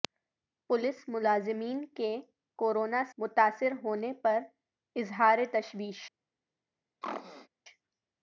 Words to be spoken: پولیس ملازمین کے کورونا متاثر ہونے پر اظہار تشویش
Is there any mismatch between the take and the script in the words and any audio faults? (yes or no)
yes